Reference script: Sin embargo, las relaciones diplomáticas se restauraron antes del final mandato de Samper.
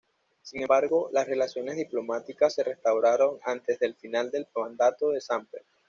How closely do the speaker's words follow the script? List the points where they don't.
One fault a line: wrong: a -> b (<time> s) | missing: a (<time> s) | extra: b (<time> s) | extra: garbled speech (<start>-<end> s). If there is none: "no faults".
extra: del (4.3 s)